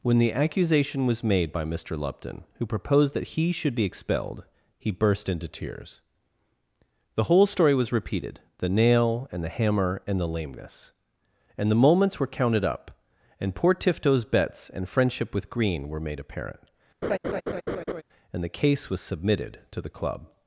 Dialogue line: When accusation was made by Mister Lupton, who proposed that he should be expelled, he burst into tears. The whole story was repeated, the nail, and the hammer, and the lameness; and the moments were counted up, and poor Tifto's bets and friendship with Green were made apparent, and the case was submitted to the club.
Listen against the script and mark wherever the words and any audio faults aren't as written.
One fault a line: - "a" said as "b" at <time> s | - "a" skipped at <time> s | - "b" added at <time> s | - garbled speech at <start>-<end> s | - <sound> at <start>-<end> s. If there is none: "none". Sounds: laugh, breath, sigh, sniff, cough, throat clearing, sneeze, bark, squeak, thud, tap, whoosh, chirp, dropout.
- "the" added at 0.2 s
- laugh at 17.0-18.0 s